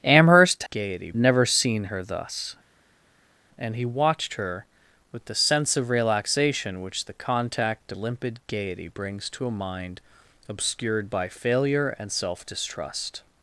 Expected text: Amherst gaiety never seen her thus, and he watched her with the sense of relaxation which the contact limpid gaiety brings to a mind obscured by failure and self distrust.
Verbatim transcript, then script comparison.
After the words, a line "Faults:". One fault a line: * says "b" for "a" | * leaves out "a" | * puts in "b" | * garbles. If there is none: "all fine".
Amherst gaiety never seen her thus, and he watched her with the sense of relaxation which the contact limpid gaiety brings to a mind obscured by failure and self distrust.
Faults:
all fine